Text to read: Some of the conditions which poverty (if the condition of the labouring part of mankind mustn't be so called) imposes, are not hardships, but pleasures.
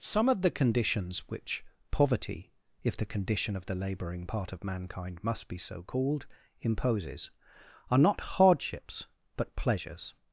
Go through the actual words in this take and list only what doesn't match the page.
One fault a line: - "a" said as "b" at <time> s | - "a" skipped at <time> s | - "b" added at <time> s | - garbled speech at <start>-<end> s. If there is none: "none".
- "mustn't" said as "must" at 5.2 s